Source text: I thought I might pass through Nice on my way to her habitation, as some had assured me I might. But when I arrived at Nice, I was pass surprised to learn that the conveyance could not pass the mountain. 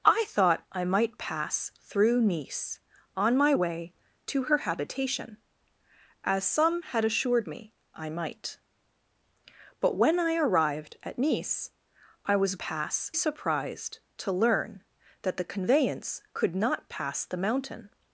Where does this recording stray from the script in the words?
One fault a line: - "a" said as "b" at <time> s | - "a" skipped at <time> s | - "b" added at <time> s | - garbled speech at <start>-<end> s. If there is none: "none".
none